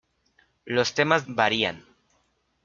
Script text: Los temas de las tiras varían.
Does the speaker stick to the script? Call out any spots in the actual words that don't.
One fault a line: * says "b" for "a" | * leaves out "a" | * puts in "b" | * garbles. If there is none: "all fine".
* leaves out "de las tiras"